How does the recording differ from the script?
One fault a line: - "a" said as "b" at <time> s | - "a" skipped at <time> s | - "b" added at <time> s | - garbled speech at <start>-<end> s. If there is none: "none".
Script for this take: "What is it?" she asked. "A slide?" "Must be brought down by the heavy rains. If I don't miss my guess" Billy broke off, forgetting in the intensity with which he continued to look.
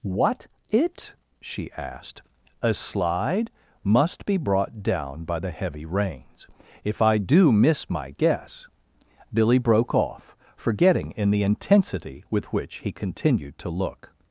- "is" skipped at 0.5 s
- "don't" said as "do" at 7.2 s